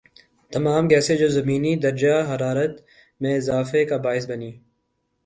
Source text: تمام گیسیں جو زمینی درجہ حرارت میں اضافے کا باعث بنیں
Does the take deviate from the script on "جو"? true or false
false